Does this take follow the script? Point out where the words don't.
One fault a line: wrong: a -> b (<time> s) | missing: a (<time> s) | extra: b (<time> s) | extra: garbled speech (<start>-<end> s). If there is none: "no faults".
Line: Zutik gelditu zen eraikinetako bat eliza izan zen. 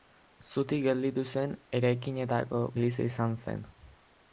missing: bat (2.6 s)